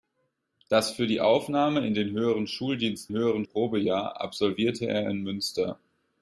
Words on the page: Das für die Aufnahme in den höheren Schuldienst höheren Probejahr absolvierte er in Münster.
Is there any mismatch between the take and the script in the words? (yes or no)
no